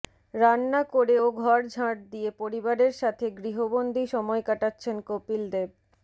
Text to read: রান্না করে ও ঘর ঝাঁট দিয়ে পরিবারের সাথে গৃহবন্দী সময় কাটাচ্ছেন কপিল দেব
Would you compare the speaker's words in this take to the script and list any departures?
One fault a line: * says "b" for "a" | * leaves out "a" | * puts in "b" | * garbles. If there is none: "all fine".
all fine